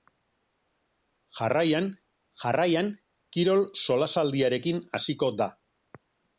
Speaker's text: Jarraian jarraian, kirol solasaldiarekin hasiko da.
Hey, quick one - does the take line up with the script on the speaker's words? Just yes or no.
yes